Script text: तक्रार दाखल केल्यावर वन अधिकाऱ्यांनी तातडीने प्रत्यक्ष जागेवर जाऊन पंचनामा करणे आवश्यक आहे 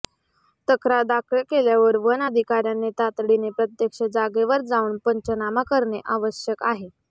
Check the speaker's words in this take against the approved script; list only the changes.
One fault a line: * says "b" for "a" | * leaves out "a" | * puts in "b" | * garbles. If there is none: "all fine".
all fine